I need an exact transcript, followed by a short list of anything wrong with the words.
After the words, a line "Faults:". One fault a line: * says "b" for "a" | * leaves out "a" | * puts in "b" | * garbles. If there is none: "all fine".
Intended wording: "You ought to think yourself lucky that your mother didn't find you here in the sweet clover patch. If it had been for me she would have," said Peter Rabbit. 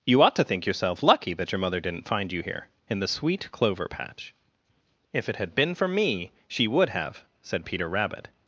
"You ought to think yourself lucky that your mother didn't find you here in the sweet clover patch. If it had been for me she would have," said Peter Rabbit.
Faults:
all fine